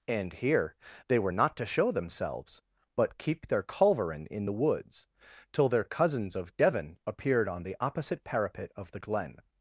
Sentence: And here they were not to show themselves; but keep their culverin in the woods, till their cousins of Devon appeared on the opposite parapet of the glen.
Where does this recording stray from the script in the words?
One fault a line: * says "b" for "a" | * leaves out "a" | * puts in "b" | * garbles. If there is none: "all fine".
all fine